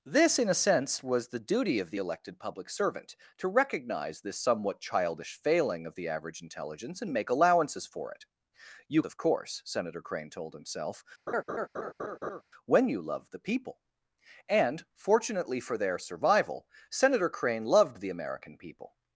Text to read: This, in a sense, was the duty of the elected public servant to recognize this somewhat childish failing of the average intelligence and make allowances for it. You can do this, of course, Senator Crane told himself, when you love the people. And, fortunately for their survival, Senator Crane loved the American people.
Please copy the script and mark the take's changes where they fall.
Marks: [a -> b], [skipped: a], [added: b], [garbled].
This, in a sense, was the duty of the elected public servant to recognize this somewhat childish failing of the average intelligence and make allowances for it. You [skipped: can do this,] of course, Senator Crane told himself, when you love the people. And, fortunately for their survival, Senator Crane loved the American people.